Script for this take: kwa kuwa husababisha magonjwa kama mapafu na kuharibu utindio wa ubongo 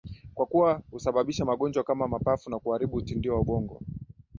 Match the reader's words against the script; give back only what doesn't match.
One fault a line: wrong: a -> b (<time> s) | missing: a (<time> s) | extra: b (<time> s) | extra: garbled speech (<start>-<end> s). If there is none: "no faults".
no faults